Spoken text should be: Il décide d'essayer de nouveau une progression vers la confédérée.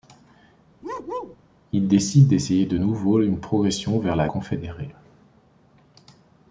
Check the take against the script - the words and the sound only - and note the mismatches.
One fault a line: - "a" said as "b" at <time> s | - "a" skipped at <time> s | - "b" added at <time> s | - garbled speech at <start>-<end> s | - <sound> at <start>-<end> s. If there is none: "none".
- bark at 0.8-1.4 s